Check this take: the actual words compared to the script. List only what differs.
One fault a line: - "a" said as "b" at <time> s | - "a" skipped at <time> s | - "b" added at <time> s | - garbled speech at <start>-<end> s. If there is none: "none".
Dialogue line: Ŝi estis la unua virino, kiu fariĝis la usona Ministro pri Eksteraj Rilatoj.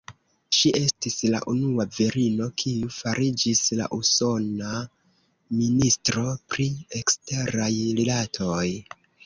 none